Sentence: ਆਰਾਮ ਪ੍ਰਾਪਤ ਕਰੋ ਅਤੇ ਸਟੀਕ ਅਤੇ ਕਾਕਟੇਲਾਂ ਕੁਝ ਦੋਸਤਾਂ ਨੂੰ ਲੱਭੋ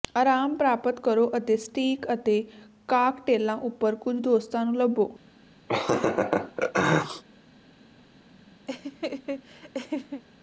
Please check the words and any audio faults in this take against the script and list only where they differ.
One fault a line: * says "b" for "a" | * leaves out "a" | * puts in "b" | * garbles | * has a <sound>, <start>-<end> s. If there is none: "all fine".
* puts in "ਉੱਪਰ"
* has a laugh, 5.7-7.2 s
* has a laugh, 8.7-10.2 s